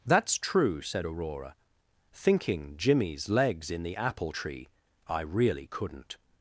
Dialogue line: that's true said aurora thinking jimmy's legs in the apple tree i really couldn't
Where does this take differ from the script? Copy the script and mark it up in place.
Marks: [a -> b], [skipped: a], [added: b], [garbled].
that's true said aurora thinking jimmy's legs in the apple tree i really couldn't